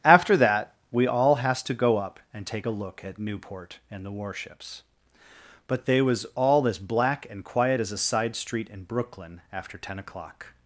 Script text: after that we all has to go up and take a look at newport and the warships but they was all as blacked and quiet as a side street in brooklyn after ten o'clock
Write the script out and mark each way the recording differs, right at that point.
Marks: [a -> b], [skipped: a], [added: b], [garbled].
after that we all has to go up and take a look at newport and the warships but they was all as [blacked -> black] and quiet as a side street in brooklyn after ten o'clock